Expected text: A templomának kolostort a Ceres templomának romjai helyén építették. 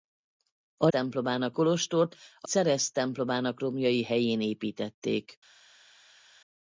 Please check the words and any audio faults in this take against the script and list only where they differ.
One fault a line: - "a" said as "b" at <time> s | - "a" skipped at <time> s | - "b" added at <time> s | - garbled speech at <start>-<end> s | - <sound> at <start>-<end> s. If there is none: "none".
none